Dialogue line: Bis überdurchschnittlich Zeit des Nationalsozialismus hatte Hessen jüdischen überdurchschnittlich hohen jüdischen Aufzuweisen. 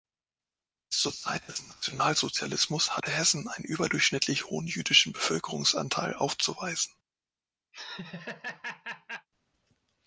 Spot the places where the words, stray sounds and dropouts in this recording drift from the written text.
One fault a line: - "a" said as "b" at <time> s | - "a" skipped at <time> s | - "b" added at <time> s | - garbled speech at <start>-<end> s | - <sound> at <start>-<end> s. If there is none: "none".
- "überdurchschnittlich" said as "zur" at 1.0 s
- "jüdischen" said as "einen" at 3.5 s
- "Bevölkerungsanteil" added at 5.1 s
- laugh at 7.7-9.3 s